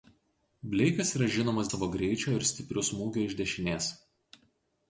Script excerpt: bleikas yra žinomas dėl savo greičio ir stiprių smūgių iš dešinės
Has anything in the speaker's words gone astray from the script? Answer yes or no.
yes